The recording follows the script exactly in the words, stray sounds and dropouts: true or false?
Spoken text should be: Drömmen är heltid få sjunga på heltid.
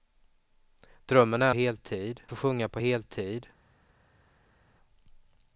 true